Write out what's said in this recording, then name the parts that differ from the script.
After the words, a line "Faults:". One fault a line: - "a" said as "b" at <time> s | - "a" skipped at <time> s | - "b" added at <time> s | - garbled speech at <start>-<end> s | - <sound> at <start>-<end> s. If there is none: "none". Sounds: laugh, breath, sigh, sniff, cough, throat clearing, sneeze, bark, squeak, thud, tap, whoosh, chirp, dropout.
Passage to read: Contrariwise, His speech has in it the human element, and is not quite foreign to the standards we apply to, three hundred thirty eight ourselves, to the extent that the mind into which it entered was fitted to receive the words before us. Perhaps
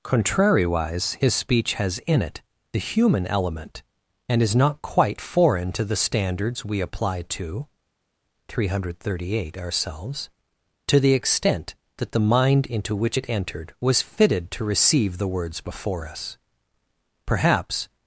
Contrariwise, His speech has in it the human element, and is not quite foreign to the standards we apply to, three hundred thirty eight ourselves, to the extent that the mind into which it entered was fitted to receive the words before us. Perhaps
Faults:
none